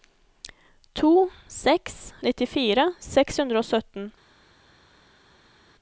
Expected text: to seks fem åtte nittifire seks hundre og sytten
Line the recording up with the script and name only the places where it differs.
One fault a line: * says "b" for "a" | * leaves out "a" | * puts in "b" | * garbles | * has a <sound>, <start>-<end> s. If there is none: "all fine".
* leaves out "fem åtte"